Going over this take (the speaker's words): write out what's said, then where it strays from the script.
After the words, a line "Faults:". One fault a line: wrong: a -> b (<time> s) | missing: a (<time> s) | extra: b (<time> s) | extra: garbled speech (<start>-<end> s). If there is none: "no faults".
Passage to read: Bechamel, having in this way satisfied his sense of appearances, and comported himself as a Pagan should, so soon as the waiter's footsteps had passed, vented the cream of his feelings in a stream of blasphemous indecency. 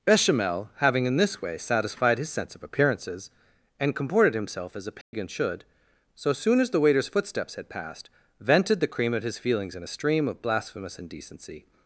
Bechamel, having in this way satisfied his sense of appearances, and comported himself as a Pagan should, so soon as the waiter's footsteps had passed, vented the cream of his feelings in a stream of blasphemous indecency.
Faults:
no faults